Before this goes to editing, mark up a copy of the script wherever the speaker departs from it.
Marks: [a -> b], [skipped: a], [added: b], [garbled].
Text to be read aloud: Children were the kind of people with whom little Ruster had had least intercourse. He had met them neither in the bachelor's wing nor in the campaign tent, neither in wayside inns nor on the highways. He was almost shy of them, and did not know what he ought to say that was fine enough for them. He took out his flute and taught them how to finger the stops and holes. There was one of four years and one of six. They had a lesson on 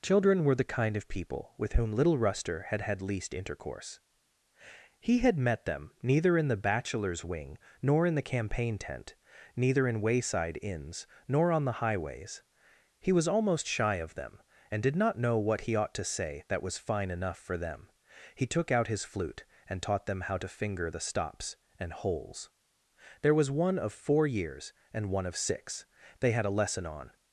Children were the kind of people with whom little Ruster had had least intercourse. He had met them neither in the bachelor's wing nor in the campaign tent, neither in wayside inns nor on the highways. He was almost shy of them, and did not know what he ought to say that was fine enough for them. He took out his flute and taught them how to finger the stops and holes. There was one of four years and one of six. They had a lesson on